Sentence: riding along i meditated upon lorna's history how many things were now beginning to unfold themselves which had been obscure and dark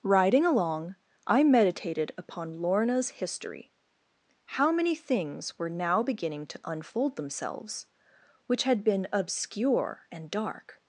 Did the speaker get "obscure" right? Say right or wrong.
right